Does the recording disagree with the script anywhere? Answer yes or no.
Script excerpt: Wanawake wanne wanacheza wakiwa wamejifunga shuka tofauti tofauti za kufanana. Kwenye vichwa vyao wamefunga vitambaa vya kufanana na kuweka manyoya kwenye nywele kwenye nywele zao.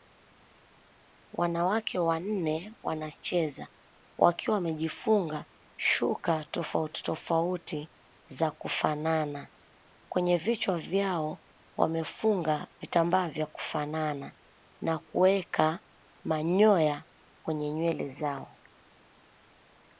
yes